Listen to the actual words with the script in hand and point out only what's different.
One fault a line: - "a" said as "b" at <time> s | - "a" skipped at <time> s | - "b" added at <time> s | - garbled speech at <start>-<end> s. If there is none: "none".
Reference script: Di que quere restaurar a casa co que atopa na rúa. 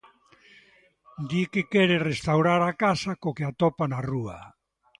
none